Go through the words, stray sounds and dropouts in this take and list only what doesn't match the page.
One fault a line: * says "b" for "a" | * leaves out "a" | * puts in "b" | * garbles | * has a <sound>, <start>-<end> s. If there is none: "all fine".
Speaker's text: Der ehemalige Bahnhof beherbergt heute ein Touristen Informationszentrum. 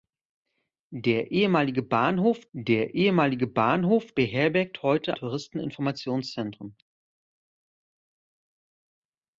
* puts in "der ehemalige Bahnhof"
* leaves out "ein"